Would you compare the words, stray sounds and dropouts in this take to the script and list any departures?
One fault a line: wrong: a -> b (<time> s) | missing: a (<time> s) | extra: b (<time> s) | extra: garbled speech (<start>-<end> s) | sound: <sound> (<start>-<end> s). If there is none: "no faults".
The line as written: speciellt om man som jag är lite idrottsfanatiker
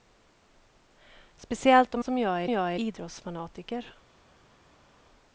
missing: man (2.0 s)
wrong: lite -> jag (2.5 s)